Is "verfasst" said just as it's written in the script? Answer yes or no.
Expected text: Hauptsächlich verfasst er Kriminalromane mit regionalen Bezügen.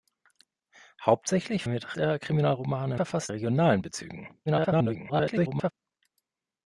no